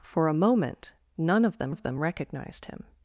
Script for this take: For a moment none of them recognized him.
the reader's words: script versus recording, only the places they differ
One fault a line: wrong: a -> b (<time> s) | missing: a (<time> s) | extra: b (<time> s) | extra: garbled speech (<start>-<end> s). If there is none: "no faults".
extra: of them (1.7 s)